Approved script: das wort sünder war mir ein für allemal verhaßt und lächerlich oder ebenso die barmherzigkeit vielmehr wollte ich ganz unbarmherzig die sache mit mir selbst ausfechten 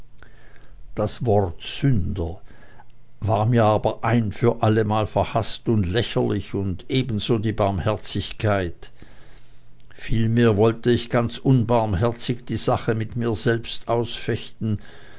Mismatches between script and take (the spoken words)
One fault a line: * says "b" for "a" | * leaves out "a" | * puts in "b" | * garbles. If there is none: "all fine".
* puts in "aber"
* says "und" for "oder"